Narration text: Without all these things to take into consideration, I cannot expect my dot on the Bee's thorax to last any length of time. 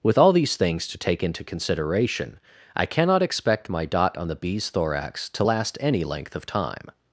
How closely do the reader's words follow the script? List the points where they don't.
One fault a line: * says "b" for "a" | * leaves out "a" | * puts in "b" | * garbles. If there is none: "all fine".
* says "With" for "Without"